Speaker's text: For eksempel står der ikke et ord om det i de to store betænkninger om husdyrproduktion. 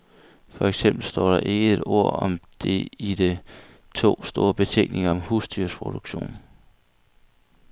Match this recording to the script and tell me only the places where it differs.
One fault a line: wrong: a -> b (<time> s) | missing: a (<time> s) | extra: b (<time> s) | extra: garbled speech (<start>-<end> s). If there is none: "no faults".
no faults